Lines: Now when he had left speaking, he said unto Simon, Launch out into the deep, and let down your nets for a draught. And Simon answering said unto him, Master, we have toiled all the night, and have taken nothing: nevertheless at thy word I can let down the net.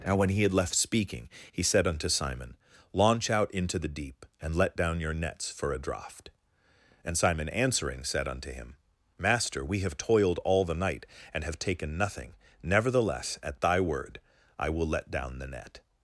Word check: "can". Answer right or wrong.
wrong